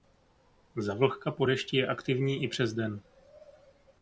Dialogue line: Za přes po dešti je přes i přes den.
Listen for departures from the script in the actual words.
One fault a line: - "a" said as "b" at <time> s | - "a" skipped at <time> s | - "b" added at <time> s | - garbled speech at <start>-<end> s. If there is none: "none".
- "přes" said as "vlhka" at 0.9 s
- "přes" said as "aktivní" at 1.9 s